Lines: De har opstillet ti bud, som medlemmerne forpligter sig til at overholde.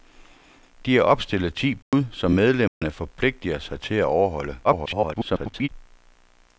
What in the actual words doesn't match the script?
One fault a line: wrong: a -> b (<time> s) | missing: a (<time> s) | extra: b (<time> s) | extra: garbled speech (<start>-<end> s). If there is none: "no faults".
extra: garbled speech (4.6-5.7 s)